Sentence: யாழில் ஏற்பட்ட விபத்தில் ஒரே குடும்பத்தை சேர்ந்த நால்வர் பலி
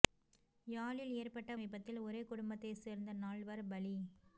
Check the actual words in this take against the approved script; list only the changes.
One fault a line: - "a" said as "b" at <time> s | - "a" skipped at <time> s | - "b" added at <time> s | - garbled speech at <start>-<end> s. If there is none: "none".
none